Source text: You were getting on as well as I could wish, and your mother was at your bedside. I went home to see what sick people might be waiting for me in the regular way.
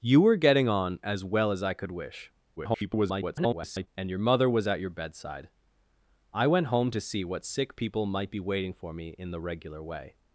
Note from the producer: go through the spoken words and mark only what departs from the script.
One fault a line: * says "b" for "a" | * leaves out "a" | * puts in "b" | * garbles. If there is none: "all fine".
* garbles